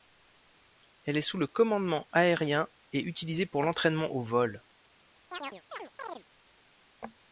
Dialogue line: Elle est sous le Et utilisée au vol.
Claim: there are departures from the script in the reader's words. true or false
true